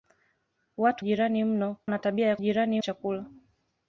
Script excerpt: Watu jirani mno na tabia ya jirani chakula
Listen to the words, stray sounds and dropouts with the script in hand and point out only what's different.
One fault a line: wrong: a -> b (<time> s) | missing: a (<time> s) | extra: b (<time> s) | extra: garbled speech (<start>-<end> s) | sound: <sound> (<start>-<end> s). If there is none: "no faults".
no faults